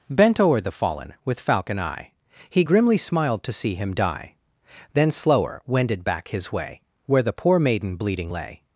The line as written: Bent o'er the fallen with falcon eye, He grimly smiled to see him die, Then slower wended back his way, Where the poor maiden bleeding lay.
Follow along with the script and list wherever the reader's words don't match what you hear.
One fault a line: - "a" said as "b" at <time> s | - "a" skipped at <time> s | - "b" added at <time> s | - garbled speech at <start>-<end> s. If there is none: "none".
none